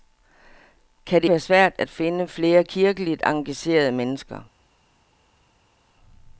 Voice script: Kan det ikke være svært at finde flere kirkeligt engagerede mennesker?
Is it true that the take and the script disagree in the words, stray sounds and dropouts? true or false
true